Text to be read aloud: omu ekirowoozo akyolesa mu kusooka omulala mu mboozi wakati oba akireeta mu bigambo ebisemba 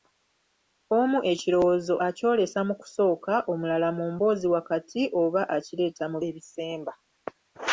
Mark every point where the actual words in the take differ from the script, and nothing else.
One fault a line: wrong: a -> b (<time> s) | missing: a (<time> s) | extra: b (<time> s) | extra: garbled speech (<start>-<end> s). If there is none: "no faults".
missing: bigambo (6.2 s)